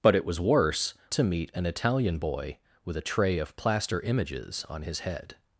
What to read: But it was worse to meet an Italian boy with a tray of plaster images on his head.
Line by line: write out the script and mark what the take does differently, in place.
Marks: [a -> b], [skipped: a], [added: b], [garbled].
But it was worse to meet an Italian boy with a tray of plaster images on his head.